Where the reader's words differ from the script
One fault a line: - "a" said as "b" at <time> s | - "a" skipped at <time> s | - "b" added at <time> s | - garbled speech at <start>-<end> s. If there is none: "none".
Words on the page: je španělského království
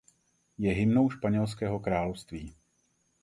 - "hymnou" added at 0.7 s